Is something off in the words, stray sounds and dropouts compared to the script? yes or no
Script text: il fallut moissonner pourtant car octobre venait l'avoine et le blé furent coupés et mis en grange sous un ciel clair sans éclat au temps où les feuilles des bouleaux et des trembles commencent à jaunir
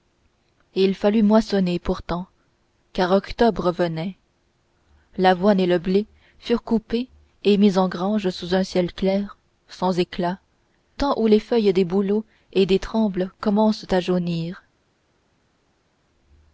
yes